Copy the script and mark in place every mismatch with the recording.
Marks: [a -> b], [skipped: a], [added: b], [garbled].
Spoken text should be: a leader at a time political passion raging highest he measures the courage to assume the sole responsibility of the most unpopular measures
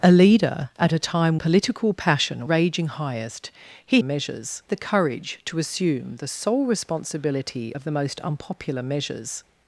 a leader at a time political passion raging highest he measures the courage to assume the sole responsibility of the most unpopular measures